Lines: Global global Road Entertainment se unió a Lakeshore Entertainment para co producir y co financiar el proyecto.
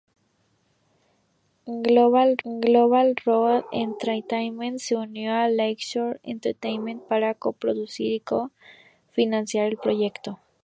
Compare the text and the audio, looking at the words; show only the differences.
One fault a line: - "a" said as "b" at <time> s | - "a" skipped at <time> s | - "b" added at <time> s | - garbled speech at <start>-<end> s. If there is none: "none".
none